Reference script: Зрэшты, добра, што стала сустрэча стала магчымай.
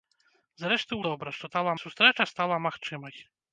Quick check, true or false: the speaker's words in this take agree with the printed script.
true